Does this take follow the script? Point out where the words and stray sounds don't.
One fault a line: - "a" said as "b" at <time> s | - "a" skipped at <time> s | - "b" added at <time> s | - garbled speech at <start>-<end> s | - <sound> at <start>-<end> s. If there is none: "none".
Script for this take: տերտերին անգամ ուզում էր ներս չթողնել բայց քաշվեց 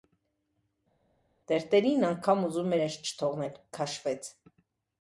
- "էր" skipped at 2.7 s
- "բայց" skipped at 3.6 s